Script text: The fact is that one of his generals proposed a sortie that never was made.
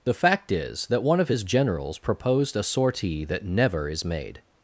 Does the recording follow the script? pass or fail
fail